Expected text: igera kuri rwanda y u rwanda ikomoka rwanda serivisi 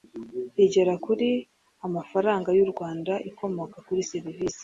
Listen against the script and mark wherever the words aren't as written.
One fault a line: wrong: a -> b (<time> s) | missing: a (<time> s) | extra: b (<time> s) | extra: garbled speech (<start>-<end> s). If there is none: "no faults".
wrong: rwanda -> amafaranga (1.9 s)
wrong: rwanda -> kuri (3.9 s)